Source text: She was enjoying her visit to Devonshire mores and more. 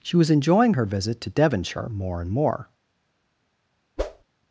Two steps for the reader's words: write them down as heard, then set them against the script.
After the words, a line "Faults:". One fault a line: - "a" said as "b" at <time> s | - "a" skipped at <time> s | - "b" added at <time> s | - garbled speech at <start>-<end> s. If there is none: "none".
She was enjoying her visit to Devonshire more and more.
Faults:
- "mores" said as "more" at 1.9 s